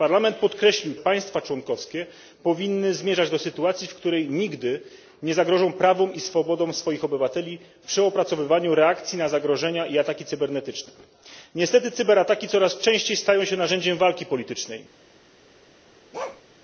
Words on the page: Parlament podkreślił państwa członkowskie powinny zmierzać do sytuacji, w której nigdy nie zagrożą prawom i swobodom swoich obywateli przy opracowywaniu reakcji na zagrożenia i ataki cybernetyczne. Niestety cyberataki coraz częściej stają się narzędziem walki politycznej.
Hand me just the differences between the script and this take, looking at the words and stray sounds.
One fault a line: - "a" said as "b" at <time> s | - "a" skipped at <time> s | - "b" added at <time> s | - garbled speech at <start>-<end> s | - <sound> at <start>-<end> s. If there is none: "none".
- bark at 16.1-16.4 s